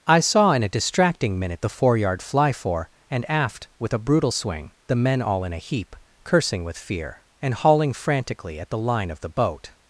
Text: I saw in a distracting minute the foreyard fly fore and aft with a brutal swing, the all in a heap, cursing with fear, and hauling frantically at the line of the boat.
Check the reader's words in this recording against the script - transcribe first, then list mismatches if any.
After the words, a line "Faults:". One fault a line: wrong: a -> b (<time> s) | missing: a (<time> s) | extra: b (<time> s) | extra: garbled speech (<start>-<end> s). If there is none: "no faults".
I saw in a distracting minute the foreyard fly fore and aft with a brutal swing, the men all in a heap, cursing with fear, and hauling frantically at the line of the boat.
Faults:
extra: men (5.0 s)